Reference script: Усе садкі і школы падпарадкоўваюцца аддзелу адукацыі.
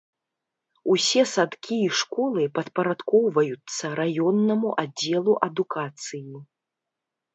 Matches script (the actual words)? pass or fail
fail